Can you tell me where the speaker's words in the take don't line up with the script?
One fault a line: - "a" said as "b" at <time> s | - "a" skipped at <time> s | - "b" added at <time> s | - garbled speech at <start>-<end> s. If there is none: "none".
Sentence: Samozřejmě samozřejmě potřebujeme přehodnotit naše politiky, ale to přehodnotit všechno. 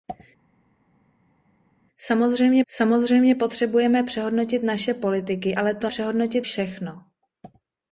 none